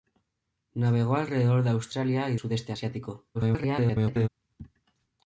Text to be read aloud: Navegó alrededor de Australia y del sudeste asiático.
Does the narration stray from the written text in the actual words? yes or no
yes